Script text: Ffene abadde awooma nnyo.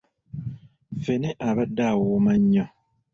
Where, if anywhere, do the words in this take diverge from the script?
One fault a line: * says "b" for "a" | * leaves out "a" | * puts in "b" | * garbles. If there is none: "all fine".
all fine